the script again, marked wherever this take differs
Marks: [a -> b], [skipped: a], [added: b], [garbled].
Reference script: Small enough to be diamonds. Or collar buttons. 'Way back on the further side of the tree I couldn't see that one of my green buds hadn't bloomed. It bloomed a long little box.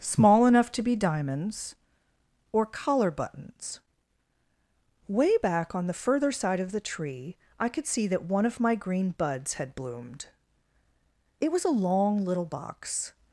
Small enough to be diamonds. Or collar buttons. 'Way back on the further side of the tree I [couldn't -> could] see that one of my green buds [hadn't -> had] bloomed. It [bloomed -> was] a long little box.